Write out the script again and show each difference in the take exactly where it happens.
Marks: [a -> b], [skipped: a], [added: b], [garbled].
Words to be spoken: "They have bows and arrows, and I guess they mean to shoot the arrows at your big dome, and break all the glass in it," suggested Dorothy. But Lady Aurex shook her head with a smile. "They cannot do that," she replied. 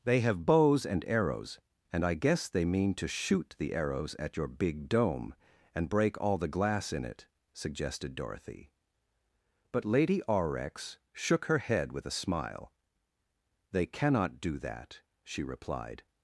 "They have bows and arrows, and I guess they mean to shoot the arrows at your big dome, and break all the glass in it," suggested Dorothy. But Lady Aurex shook her head with a smile. "They cannot do that," she replied.